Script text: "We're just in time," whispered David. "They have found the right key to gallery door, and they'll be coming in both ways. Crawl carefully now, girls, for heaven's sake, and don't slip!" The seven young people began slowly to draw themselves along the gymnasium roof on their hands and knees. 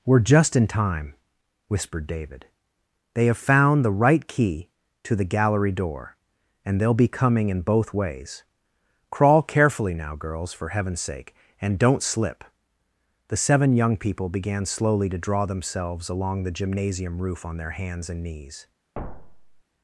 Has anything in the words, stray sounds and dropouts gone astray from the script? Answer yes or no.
yes